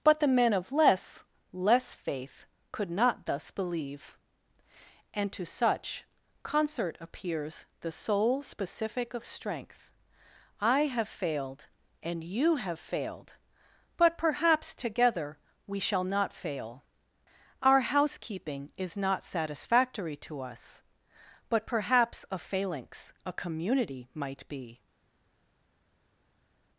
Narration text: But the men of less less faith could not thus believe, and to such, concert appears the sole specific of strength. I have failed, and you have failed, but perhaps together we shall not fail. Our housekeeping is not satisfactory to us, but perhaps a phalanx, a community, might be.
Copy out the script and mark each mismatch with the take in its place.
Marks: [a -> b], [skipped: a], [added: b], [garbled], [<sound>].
But the men of less less faith could not thus believe, and to such, concert appears the sole specific of strength. I have failed, and you have failed, but perhaps together we shall not fail. Our housekeeping is not satisfactory to us, but perhaps a phalanx, a community, might be.